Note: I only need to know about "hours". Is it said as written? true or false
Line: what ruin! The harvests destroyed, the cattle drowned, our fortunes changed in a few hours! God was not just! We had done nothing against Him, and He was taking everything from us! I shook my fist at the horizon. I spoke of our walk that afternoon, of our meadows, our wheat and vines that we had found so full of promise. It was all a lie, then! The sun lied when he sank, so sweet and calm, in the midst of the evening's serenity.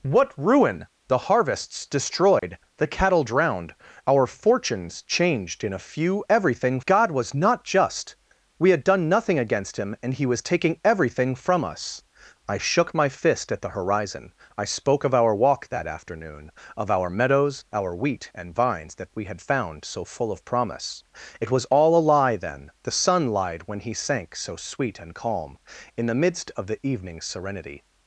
false